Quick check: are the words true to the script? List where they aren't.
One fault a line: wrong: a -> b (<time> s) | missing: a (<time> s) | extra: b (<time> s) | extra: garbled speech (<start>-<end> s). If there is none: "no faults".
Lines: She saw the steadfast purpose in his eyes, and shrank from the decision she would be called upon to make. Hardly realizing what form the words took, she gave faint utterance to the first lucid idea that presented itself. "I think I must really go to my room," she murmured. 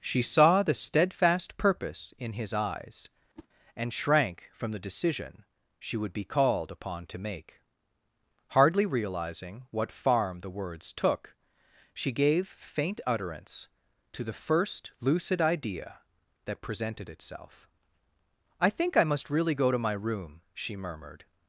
wrong: form -> farm (9.9 s)